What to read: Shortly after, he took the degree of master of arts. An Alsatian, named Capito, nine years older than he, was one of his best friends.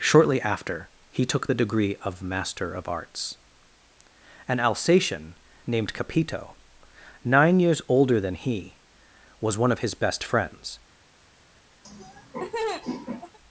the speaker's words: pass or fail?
pass